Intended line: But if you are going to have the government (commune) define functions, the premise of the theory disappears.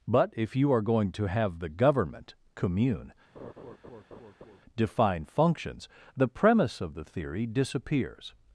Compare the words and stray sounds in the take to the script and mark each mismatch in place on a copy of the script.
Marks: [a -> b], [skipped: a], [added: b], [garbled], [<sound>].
But if you are going to have the government (commune) [laugh] define functions, the premise of the theory disappears.